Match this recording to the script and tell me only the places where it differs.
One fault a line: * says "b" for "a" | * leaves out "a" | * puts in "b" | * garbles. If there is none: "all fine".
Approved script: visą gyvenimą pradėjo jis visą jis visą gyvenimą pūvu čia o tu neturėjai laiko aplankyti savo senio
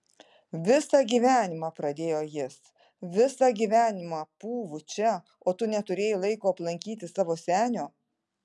* leaves out "jis visą"